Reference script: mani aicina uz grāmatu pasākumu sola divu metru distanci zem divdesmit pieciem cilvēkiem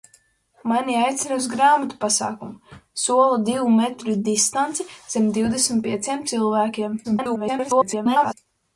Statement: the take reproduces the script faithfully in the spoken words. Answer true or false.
false